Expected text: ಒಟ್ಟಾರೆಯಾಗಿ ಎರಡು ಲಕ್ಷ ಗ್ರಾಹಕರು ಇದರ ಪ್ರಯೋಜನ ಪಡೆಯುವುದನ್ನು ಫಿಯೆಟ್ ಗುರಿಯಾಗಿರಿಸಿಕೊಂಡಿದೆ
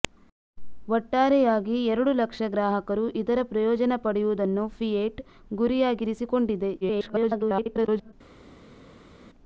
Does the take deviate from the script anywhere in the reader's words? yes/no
yes